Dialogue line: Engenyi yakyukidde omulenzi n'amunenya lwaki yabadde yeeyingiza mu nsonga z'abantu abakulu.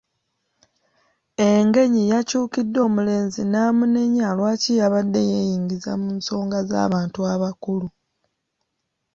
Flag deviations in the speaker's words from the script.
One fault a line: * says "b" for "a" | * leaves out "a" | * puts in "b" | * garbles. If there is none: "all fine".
all fine